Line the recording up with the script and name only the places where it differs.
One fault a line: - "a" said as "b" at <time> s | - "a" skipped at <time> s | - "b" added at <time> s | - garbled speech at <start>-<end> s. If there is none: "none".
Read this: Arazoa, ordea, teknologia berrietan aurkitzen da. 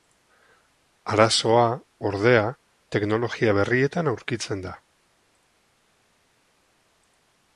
none